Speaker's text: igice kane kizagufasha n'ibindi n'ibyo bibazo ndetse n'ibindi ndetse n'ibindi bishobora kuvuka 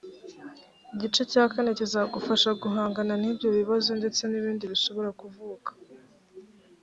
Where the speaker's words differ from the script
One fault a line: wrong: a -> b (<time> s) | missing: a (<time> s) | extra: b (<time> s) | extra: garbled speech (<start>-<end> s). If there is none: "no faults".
extra: cya (1.3 s)
wrong: n'ibindi -> guhangana (2.6 s)
missing: ndetse n'ibindi (4.6 s)